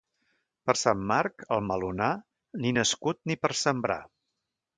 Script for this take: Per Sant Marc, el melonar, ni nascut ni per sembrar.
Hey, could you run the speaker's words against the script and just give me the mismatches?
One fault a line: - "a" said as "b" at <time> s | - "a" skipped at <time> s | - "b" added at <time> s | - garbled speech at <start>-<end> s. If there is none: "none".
none